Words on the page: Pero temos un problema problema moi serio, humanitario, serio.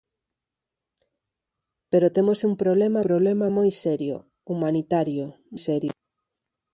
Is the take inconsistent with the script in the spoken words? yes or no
no